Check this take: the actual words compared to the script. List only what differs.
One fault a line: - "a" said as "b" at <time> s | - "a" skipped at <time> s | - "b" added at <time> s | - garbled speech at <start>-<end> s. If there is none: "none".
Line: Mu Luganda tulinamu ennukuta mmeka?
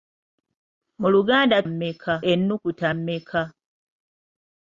- "tulinamu" said as "mmeka" at 1.7 s